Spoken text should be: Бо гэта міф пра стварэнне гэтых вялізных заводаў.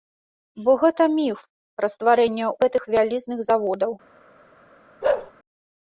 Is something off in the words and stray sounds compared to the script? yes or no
yes